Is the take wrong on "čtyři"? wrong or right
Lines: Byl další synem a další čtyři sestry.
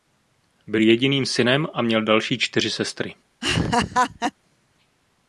right